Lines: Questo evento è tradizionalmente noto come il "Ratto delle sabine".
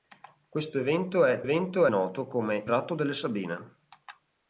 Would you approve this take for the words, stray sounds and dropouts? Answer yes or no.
no